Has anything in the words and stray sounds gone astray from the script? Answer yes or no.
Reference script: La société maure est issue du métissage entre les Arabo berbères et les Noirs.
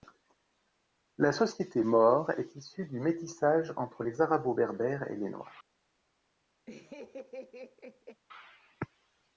yes